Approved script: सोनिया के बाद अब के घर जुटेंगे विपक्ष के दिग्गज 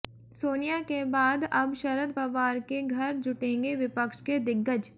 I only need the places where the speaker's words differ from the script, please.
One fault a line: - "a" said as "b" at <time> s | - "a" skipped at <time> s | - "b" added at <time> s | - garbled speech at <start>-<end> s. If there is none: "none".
- "शरद पवार" added at 1.7 s